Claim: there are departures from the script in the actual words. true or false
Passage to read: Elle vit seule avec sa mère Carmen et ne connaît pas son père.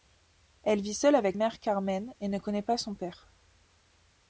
true